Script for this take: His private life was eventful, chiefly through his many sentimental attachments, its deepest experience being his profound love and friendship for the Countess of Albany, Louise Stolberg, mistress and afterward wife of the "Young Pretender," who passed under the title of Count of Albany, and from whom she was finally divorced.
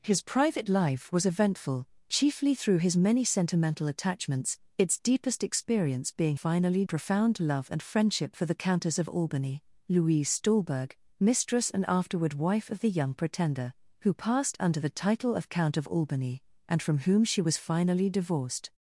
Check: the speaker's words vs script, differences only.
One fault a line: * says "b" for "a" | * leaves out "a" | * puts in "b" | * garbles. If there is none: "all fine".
* says "finally" for "his"